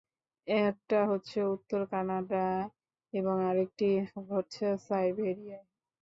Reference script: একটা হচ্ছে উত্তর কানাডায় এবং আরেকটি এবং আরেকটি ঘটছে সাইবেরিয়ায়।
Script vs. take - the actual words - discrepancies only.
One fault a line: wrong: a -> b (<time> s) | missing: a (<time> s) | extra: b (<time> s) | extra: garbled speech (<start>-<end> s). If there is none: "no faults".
missing: এবং আরেকটি (3.9 s)